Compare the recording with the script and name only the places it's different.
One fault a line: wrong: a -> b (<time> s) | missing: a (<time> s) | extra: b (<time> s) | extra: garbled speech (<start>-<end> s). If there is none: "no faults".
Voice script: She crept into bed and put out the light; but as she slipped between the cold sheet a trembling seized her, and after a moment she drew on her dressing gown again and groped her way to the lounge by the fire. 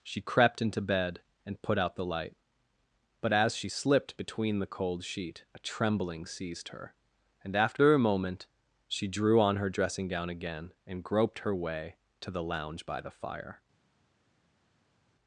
no faults